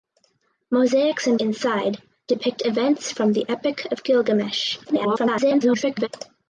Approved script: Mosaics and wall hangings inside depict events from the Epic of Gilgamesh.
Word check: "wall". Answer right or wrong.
wrong